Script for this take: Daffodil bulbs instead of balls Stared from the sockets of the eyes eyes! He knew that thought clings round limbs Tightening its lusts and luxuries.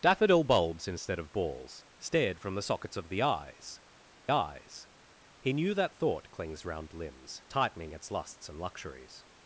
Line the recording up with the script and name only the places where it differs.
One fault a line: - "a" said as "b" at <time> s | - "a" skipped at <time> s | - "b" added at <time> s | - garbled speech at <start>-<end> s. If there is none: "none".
none